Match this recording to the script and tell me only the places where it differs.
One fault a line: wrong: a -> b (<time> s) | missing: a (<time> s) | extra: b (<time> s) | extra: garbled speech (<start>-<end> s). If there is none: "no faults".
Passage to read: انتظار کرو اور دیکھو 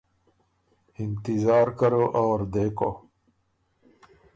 no faults